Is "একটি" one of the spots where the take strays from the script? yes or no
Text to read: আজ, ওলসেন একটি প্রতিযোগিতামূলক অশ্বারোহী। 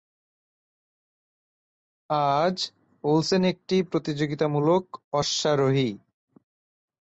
no